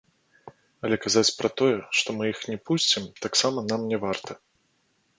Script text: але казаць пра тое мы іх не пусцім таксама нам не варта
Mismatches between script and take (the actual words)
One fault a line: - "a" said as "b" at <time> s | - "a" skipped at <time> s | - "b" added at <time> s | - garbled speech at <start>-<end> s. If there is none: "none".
- "што" added at 2.0 s